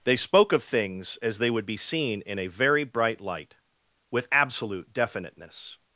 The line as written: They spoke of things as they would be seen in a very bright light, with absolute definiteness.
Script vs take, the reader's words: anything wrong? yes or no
no